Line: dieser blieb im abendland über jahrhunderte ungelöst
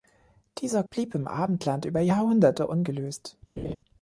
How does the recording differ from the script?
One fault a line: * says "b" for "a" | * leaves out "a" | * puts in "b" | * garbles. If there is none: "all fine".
all fine